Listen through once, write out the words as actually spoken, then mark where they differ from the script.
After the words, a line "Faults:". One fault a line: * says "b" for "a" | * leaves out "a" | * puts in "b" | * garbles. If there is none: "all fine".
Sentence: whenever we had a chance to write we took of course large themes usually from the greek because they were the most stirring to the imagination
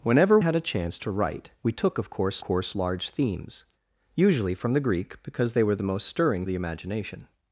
whenever had a chance to write we took of course course large themes usually from the greek because they were the most stirring the imagination
Faults:
* leaves out "we"
* puts in "course"
* leaves out "to"